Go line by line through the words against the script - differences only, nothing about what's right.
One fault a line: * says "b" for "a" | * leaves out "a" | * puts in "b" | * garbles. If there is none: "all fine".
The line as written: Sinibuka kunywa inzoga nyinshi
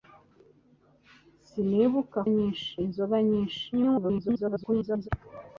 * says "nyinshi" for "kunywa"
* garbles